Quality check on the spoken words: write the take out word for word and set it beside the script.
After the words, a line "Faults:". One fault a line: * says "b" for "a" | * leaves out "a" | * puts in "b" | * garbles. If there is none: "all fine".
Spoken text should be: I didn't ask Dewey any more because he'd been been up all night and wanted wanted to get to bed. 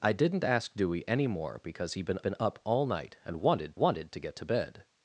I didn't ask Dewey any more because he'd been been up all night and wanted wanted to get to bed.
Faults:
all fine